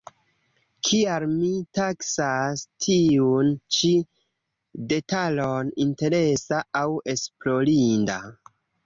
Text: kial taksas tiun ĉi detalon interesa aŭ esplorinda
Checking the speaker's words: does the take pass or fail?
fail